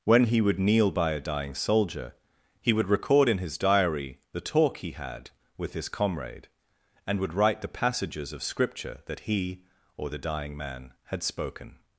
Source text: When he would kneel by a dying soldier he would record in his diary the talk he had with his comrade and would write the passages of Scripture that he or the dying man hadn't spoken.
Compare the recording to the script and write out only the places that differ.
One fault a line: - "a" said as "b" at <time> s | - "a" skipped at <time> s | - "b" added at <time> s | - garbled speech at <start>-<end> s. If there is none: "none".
- "hadn't" said as "had" at 11.1 s